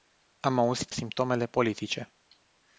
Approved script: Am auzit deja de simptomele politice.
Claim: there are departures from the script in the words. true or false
true